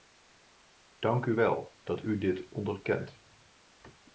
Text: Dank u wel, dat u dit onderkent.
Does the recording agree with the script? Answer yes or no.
yes